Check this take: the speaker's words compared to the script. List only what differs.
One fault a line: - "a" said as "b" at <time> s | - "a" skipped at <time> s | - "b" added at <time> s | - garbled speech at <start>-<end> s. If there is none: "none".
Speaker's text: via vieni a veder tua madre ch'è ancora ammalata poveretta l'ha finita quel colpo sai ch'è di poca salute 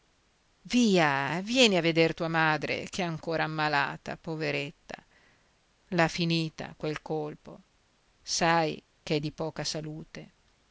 none